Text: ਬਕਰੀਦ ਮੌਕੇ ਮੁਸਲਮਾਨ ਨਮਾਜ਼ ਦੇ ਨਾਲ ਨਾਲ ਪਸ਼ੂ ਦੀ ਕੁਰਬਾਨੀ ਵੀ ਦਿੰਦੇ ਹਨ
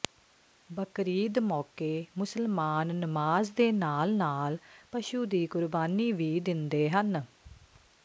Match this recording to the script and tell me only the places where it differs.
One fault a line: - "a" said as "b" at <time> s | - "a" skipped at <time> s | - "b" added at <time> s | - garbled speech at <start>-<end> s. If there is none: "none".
none